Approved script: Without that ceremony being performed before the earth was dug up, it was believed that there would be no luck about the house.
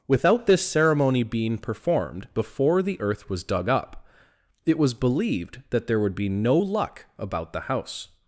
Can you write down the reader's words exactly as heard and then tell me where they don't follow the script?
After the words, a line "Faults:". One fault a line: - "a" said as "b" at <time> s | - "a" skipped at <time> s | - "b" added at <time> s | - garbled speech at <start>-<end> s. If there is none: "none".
Without this ceremony being performed before the earth was dug up, it was believed that there would be no luck about the house.
Faults:
- "that" said as "this" at 0.5 s